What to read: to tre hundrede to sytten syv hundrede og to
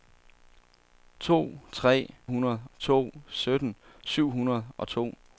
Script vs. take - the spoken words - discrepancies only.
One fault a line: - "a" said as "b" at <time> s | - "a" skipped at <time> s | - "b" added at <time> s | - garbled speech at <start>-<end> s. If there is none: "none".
none